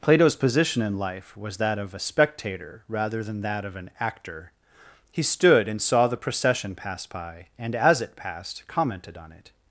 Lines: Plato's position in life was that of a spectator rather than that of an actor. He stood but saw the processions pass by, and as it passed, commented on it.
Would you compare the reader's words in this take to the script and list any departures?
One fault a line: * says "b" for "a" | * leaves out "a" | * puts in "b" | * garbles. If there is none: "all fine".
* says "and" for "but"
* says "procession" for "processions"